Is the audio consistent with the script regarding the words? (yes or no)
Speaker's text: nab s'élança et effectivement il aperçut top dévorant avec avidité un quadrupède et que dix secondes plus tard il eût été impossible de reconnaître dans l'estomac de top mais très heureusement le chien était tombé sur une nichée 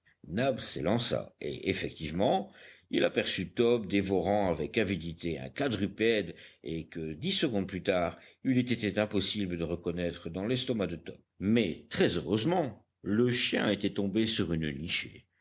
yes